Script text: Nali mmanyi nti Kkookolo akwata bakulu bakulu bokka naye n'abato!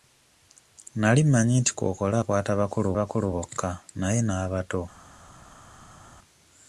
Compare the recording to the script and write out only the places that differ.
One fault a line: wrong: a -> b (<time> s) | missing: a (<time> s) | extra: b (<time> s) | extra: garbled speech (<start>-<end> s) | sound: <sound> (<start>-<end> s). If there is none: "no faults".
no faults